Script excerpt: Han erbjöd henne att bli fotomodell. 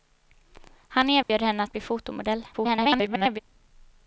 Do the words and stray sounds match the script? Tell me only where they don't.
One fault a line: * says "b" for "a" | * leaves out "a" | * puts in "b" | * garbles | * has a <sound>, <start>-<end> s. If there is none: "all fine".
* has a dropout, 1.2-1.3 s
* garbles